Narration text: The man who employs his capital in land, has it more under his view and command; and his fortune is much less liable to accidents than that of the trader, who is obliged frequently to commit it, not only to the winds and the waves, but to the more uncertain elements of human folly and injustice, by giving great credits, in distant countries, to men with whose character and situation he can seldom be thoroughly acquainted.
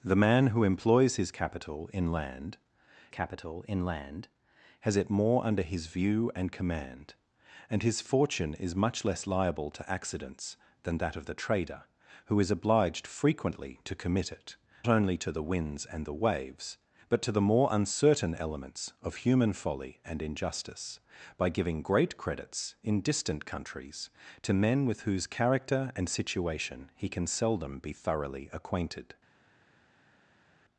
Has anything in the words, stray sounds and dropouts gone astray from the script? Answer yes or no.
yes